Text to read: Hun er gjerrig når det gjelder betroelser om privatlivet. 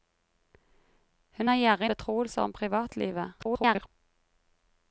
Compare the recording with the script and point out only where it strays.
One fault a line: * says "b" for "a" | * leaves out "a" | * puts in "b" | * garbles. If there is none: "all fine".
* leaves out "når det gjelder"
* garbles